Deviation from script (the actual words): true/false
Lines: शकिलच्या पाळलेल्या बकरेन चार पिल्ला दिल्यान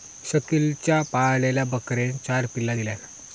false